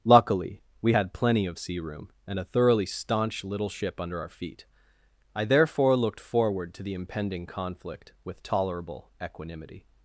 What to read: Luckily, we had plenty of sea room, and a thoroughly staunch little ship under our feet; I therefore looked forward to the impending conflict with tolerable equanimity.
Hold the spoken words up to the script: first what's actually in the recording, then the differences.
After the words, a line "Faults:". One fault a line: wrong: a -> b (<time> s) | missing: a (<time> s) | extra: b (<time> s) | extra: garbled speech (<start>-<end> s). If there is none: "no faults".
Luckily, we had plenty of sea room, and a thoroughly staunch little ship under our feet; I therefore looked forward to the impending conflict with tolerable equanimity.
Faults:
no faults